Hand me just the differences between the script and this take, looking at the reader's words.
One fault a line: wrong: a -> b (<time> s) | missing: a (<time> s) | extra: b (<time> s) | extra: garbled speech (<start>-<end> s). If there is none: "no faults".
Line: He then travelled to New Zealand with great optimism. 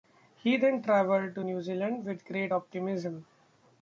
no faults